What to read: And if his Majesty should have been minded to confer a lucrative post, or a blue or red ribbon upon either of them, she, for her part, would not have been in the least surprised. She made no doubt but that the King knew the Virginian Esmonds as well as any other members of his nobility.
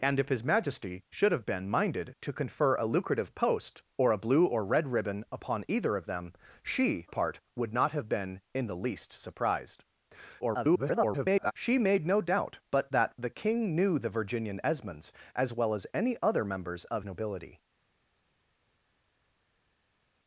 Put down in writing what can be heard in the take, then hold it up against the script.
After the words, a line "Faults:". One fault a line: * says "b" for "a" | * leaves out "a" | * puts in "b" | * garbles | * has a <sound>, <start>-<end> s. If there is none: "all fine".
And if his Majesty should have been minded to confer a lucrative post, or a blue or red ribbon upon either of them, she, part, would not have been in the least surprised. [garbled] She made no doubt but that the King knew the Virginian Esmonds as well as any other members of nobility.
Faults:
* leaves out "for her"
* garbles
* leaves out "his"